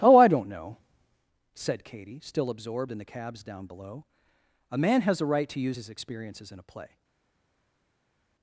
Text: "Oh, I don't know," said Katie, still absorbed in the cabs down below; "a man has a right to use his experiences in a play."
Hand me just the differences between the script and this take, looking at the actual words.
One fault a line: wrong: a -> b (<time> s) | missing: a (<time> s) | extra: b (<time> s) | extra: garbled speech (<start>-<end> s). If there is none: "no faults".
no faults